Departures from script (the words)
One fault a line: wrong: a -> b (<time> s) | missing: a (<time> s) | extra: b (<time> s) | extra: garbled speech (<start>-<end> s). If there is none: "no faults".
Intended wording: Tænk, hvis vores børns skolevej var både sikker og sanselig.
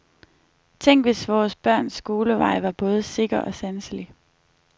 no faults